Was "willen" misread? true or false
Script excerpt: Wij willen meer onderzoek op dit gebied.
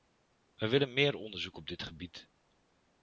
false